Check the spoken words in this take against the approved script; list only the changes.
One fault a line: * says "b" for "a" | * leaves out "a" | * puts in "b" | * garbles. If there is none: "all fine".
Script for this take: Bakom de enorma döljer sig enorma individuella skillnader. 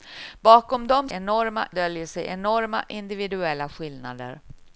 all fine